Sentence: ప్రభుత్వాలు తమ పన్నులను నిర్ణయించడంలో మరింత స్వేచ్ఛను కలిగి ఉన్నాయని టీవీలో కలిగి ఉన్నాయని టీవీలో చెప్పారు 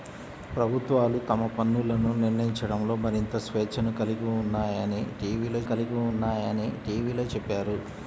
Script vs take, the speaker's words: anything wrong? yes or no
no